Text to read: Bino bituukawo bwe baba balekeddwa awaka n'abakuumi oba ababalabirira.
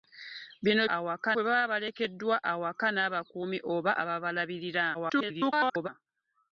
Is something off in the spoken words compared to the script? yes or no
yes